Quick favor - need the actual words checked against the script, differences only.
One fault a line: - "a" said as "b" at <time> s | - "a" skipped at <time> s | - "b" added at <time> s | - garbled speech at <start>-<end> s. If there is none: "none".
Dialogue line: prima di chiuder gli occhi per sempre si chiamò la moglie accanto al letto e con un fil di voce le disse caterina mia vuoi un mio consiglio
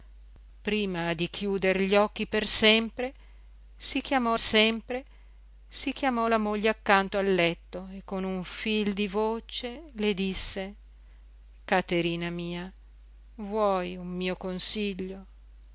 - "sempre si chiamò" added at 4.4 s